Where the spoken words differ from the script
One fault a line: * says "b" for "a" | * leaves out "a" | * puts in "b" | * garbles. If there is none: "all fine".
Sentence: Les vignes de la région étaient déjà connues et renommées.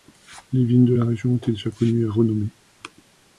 all fine